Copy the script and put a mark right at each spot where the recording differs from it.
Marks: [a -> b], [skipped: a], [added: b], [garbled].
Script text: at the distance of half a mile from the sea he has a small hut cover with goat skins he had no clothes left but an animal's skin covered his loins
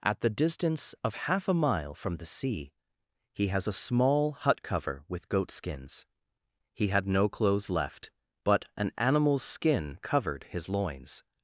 at the distance of half a mile from the sea he has a small hut cover with goat skins he had no clothes left but an animal's skin covered his loins